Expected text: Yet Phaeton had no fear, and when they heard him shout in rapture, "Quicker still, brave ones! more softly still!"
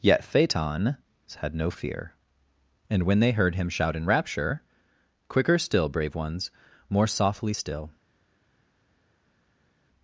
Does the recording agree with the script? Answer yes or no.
yes